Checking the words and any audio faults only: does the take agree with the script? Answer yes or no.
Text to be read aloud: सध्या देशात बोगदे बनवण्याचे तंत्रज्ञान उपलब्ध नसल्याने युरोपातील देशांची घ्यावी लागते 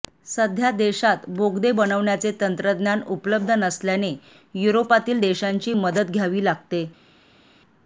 no